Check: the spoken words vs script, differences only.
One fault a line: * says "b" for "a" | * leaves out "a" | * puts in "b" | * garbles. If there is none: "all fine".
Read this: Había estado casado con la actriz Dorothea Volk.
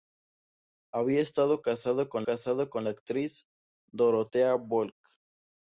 * puts in "casado con"